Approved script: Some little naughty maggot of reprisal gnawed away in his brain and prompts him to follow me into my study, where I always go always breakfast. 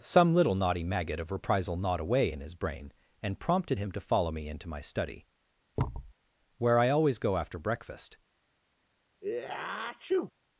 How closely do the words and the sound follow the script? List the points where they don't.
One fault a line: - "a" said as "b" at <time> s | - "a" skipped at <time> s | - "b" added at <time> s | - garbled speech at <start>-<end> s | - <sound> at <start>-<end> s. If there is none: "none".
- "prompts" said as "prompted" at 3.4 s
- thud at 5.8-6.1 s
- "always" said as "after" at 7.4 s
- sneeze at 9.2-10.3 s